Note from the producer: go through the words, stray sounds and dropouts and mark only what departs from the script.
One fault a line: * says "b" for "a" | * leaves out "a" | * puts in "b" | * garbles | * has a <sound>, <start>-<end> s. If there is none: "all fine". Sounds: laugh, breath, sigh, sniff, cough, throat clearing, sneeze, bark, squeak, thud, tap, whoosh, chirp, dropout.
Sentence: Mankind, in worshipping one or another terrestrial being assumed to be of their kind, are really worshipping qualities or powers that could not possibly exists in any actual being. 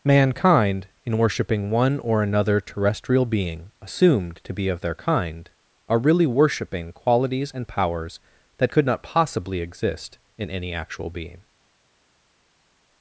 * says "and" for "or"
* says "exist" for "exists"